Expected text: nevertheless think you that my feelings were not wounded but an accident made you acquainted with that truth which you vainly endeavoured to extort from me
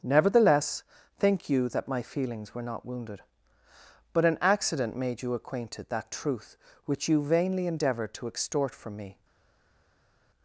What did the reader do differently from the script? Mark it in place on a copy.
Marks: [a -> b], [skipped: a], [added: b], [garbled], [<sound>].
nevertheless think you that my feelings were not wounded but an accident made you acquainted [skipped: with] that truth which you vainly endeavoured to extort from me